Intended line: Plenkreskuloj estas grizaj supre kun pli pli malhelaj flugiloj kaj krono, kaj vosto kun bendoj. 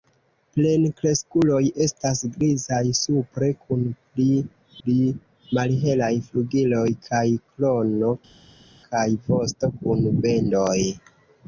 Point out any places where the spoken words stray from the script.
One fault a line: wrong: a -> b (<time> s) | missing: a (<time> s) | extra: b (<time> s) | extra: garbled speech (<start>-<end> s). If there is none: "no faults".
no faults